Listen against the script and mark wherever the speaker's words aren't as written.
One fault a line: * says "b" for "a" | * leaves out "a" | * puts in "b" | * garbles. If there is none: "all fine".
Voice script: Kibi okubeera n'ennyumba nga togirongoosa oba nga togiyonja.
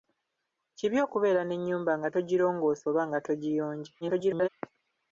* garbles